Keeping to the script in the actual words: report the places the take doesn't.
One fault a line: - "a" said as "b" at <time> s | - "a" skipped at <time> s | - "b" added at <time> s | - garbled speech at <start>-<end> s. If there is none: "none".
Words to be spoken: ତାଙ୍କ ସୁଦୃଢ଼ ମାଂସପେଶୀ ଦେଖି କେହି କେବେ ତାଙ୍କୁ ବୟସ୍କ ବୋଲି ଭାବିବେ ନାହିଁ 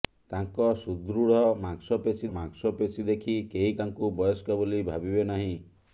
- "ମାଂସପେଶୀ" added at 2.3 s
- "କେବେ" skipped at 3.7 s